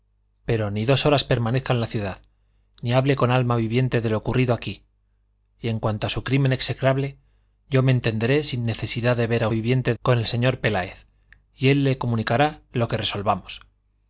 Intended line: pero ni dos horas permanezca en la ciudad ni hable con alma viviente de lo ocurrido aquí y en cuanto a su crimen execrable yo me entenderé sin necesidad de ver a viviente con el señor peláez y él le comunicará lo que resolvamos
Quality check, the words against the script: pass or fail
pass